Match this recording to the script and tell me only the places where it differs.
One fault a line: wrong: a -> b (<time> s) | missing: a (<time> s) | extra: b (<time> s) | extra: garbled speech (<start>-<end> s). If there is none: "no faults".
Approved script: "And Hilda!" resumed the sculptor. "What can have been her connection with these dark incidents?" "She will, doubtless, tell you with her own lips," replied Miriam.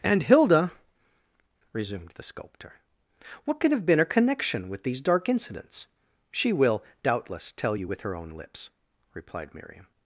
no faults